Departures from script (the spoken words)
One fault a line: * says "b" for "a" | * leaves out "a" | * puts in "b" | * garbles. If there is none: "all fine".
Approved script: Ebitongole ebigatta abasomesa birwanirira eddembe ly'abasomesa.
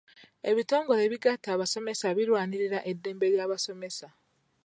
all fine